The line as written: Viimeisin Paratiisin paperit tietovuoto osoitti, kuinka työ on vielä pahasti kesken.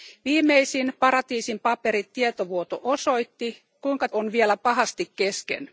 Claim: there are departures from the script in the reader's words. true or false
true